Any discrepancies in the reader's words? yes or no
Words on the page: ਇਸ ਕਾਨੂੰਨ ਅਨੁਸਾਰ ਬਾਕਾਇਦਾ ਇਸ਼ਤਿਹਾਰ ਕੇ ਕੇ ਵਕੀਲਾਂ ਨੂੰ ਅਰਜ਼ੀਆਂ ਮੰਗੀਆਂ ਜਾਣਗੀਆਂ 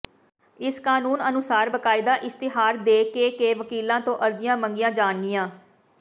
yes